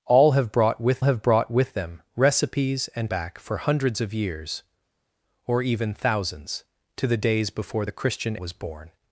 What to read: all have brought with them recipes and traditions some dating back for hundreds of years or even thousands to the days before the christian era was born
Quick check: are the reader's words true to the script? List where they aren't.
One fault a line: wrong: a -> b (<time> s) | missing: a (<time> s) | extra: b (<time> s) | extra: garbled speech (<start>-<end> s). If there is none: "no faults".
extra: have brought with (1.0 s)
missing: traditions some dating (3.1 s)
missing: era (8.4 s)